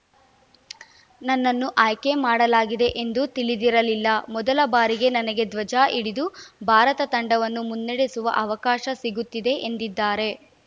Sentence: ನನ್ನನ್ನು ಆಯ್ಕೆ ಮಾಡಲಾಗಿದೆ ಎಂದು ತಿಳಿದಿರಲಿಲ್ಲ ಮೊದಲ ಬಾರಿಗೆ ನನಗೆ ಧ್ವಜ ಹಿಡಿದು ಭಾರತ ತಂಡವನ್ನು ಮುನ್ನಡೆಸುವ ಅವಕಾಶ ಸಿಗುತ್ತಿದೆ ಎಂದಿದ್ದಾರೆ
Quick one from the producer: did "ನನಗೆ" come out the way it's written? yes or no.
yes